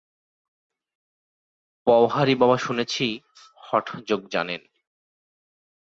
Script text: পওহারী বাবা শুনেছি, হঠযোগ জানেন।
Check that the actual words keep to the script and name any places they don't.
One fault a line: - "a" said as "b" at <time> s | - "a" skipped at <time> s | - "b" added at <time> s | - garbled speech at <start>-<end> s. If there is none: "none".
none